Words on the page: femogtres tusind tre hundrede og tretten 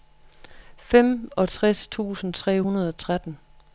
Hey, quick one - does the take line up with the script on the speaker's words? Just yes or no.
yes